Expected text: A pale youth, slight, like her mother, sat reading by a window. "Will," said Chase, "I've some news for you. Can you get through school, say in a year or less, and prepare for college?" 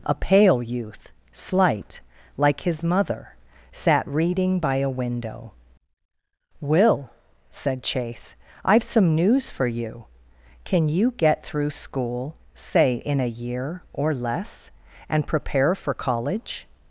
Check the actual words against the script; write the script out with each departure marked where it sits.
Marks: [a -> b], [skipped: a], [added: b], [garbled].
A pale youth, slight, like [her -> his] mother, sat reading by a window. "Will," said Chase, "I've some news for you. Can you get through school, say in a year or less, and prepare for college?"